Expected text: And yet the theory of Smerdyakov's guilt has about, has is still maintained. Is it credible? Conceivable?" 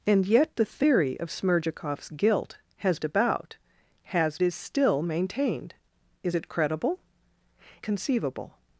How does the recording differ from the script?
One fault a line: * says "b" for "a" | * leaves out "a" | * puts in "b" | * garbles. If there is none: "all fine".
all fine